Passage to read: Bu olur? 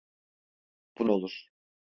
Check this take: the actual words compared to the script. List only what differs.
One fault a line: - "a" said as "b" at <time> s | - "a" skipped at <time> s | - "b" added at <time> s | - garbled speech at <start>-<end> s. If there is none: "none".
none